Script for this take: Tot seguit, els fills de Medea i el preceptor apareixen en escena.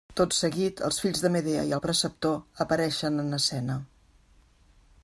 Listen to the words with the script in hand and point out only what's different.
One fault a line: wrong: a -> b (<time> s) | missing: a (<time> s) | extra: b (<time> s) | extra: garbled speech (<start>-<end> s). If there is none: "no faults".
no faults